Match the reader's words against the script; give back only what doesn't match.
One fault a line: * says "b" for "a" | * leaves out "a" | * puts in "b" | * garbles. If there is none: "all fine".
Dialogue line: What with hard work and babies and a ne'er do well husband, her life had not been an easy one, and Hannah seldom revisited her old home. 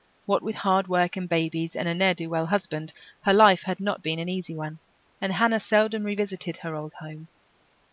all fine